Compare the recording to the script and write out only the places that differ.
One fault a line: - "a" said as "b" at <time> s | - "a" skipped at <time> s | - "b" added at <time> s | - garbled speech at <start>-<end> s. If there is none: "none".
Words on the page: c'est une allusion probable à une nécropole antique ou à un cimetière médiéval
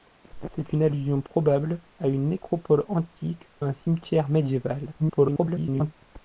- "ou" skipped at 3.5 s
- garbled speech at 5.0-5.9 s